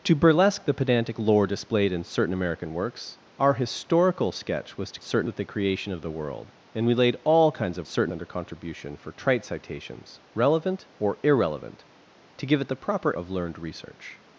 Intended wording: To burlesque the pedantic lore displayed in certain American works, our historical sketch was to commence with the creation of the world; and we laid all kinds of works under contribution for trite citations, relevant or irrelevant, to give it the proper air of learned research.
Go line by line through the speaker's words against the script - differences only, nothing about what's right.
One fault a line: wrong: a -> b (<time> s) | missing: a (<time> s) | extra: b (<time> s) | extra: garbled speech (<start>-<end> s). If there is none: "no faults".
wrong: commence -> certain (5.0 s)
wrong: works -> certain (7.8 s)
missing: air (13.1 s)